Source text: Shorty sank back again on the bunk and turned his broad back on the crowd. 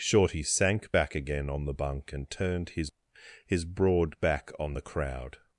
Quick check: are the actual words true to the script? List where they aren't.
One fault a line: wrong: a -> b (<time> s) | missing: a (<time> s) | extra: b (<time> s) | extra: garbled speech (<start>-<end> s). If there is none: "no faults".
extra: his (3.5 s)